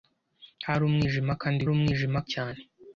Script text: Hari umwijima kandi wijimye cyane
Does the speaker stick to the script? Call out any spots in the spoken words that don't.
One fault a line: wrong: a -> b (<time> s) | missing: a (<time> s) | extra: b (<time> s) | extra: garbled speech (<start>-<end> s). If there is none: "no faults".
wrong: wijimye -> umwijima (1.7 s)